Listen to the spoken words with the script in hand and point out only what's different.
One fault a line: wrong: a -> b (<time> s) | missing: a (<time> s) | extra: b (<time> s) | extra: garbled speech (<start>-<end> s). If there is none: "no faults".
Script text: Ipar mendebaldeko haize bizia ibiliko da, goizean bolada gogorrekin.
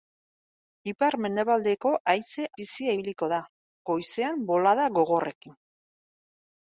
no faults